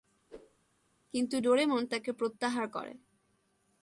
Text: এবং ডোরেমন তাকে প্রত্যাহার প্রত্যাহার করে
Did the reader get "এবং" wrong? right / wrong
wrong